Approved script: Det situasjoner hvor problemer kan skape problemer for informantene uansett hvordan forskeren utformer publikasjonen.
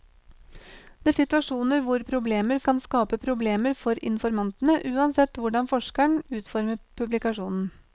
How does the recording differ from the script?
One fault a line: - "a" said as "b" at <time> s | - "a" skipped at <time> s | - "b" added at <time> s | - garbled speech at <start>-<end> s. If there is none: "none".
none